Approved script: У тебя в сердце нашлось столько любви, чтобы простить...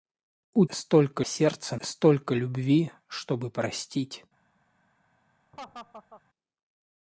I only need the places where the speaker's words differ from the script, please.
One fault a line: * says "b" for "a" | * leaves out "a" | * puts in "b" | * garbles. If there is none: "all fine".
* says "столько" for "тебя"
* leaves out "нашлось"